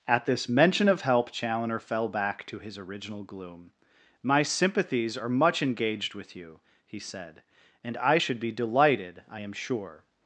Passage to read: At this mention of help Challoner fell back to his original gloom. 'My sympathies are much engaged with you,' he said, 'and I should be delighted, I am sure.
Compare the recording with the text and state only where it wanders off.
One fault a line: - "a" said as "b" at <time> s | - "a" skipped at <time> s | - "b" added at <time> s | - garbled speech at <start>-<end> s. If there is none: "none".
none